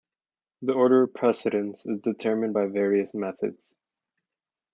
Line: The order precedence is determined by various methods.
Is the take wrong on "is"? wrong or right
right